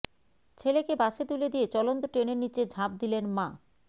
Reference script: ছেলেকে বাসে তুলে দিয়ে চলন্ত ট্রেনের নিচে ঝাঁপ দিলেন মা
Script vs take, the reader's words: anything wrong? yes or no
no